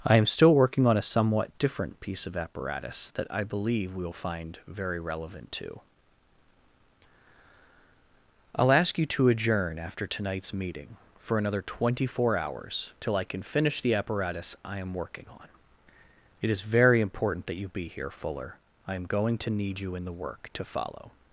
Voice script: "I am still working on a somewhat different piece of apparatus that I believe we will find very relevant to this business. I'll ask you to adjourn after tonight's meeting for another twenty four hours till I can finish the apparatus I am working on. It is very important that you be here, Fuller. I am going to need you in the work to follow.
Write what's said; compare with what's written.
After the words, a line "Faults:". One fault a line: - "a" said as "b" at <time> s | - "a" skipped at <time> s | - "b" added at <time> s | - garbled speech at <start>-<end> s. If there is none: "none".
"I am still working on a somewhat different piece of apparatus that I believe we will find very relevant to. I'll ask you to adjourn after tonight's meeting for another twenty four hours till I can finish the apparatus I am working on. It is very important that you be here, Fuller. I am going to need you in the work to follow.
Faults:
- "this business" skipped at 5.8 s